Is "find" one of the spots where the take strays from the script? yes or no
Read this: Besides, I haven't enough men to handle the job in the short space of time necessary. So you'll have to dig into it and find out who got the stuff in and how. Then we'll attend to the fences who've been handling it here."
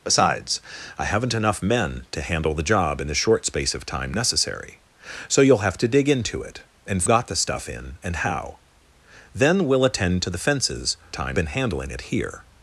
yes